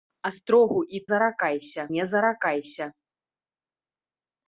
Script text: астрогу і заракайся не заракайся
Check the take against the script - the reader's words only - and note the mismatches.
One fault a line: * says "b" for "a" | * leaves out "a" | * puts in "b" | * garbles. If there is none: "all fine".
all fine